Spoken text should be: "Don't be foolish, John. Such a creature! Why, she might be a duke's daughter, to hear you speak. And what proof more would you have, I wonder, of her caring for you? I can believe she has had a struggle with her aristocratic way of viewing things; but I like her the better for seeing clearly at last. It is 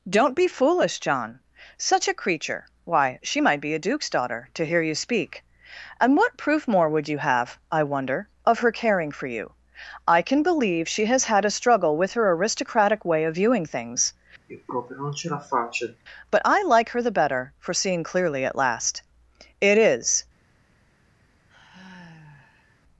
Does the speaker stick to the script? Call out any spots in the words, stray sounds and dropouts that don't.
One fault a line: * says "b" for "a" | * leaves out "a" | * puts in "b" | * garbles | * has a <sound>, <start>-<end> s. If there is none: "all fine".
* has a sigh, 14.5-16.0 s
* has a sigh, 21.5-22.8 s